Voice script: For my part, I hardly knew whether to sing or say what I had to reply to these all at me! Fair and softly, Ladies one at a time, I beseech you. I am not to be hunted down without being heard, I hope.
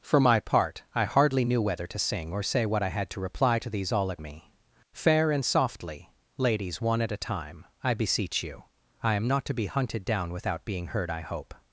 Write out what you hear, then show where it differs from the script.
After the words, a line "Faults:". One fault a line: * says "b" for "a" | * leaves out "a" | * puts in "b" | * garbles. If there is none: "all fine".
For my part, I hardly knew whether to sing or say what I had to reply to these all at me! Fair and softly, Ladies one at a time, I beseech you. I am not to be hunted down without being heard, I hope.
Faults:
all fine